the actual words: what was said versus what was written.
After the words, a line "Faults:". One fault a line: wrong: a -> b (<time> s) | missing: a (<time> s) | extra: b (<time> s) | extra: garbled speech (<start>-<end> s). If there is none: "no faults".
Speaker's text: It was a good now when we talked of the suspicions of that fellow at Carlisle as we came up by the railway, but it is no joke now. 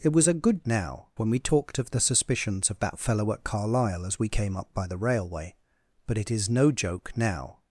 It was a good now when we talked of the suspicions of that fellow at Carlisle as we came up by the railway, but it is no joke now.
Faults:
no faults